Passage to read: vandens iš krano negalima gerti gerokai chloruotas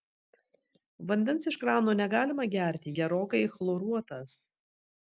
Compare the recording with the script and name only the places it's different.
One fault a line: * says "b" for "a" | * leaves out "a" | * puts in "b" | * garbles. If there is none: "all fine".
all fine